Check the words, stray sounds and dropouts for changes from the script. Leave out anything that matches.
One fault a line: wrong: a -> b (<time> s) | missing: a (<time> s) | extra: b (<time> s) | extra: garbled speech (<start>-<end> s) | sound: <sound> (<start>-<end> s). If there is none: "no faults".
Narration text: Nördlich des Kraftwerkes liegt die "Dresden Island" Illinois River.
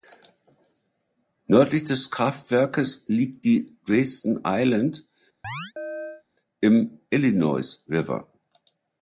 sound: chirp (5.4-6.2 s)
extra: im (6.6 s)